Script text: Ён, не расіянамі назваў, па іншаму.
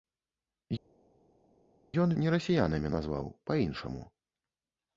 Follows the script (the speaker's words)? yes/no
yes